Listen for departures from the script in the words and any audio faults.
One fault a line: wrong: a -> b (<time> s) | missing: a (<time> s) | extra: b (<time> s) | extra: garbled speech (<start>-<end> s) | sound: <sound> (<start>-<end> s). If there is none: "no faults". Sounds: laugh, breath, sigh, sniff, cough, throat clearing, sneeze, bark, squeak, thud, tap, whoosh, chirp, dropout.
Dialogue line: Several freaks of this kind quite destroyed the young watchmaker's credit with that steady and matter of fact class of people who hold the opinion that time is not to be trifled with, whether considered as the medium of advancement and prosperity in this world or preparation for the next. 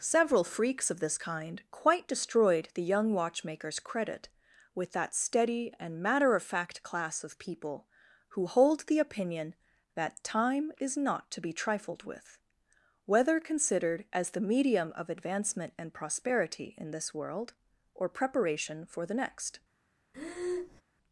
sound: breath (20.1-20.8 s)